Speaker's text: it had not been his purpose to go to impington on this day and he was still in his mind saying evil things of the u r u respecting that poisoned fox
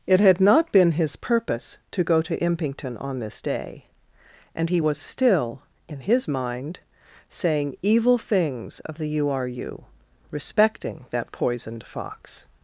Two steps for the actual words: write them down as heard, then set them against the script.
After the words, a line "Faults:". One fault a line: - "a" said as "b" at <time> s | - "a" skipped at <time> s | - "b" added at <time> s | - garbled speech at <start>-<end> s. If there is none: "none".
it had not been his purpose to go to impington on this day and he was still in his mind saying evil things of the u r u respecting that poisoned fox
Faults:
none